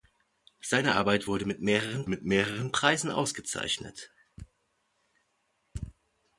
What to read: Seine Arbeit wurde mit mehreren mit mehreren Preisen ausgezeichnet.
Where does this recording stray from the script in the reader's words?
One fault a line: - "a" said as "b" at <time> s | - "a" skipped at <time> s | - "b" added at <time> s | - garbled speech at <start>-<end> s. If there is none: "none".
none